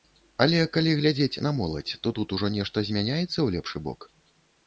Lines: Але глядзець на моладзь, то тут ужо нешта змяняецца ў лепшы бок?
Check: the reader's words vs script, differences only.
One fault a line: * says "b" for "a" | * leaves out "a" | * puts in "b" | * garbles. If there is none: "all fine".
* puts in "калі"